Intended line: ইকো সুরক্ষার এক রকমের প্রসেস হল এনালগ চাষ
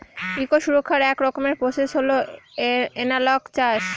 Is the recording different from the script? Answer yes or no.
no